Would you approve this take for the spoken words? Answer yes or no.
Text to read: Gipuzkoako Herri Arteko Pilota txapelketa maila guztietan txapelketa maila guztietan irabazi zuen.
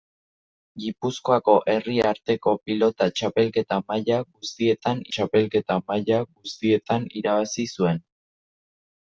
yes